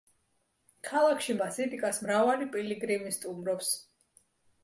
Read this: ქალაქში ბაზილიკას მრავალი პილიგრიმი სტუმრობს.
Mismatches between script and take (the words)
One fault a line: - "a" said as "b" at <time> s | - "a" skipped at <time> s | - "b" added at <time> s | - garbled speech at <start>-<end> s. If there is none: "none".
none